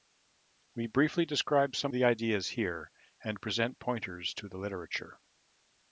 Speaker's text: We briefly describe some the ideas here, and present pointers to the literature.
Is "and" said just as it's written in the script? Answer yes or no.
yes